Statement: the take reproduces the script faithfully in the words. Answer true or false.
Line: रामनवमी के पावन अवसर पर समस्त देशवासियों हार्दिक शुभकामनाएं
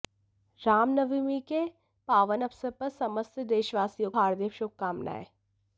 true